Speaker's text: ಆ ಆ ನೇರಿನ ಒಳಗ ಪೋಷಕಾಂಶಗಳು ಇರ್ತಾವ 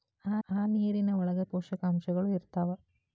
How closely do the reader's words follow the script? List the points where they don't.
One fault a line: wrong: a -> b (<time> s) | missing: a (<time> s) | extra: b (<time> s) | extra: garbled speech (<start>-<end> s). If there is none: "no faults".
no faults